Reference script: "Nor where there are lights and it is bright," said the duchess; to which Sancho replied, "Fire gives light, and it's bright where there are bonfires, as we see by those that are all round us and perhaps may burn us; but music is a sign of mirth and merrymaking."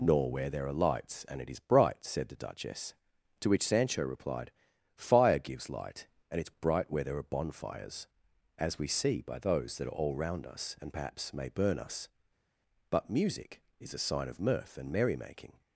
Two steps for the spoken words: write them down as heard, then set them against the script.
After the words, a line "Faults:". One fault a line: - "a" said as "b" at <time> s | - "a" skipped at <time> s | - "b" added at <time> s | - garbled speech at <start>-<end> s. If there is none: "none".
"Nor where there are lights and it is bright," said the duchess; to which Sancho replied, "Fire gives light, and it's bright where there are bonfires, as we see by those that are all round us and perhaps may burn us; but music is a sign of mirth and merrymaking."
Faults:
none